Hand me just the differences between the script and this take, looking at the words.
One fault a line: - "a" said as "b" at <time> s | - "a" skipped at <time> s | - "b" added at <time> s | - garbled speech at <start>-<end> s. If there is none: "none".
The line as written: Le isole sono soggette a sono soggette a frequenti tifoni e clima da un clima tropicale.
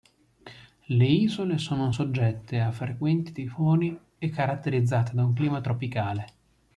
- "sono soggette a" skipped at 2.7 s
- "clima" said as "caratterizzate" at 4.3 s